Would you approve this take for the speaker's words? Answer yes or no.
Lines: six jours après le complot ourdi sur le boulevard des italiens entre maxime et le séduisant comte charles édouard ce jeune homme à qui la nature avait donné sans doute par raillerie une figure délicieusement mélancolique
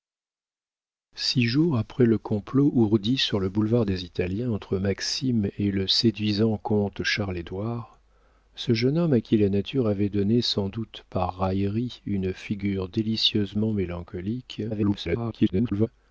no